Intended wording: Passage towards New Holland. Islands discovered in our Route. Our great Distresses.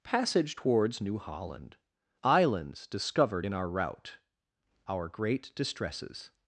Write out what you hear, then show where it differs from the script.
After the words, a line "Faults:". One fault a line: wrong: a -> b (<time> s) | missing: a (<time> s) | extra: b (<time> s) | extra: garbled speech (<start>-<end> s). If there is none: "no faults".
Passage towards New Holland. Islands discovered in our Route. Our great Distresses.
Faults:
no faults